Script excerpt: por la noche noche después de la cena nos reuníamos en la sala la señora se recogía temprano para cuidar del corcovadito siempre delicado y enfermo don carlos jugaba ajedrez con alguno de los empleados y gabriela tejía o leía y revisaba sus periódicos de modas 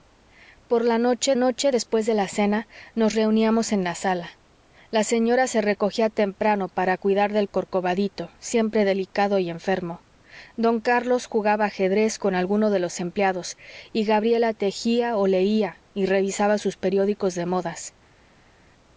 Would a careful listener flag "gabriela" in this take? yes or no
no